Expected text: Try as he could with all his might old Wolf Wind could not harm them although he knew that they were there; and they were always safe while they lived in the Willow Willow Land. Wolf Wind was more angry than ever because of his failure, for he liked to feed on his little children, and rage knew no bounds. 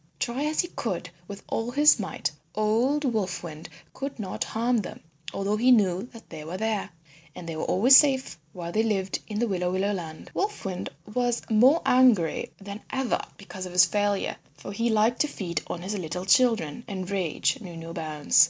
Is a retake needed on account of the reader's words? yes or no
no